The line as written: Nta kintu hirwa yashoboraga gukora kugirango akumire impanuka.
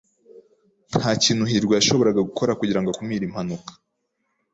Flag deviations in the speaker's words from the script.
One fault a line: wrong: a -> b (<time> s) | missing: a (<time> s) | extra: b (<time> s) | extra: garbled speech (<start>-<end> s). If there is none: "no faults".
no faults